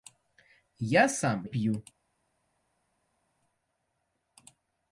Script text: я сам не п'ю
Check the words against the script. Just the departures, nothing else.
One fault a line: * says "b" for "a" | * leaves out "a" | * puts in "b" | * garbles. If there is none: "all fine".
* leaves out "не"